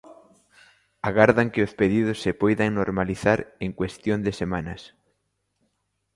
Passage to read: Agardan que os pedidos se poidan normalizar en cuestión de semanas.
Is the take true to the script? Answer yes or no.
yes